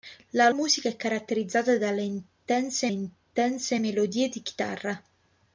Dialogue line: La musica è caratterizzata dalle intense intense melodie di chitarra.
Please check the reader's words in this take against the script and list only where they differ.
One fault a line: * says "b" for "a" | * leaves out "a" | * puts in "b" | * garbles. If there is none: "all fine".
all fine